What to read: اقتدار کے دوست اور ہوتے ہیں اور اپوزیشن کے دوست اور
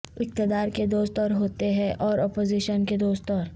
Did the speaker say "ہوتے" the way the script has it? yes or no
yes